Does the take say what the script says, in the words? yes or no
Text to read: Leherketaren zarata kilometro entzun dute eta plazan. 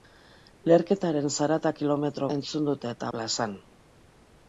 yes